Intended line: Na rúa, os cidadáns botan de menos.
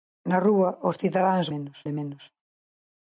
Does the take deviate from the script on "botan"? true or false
true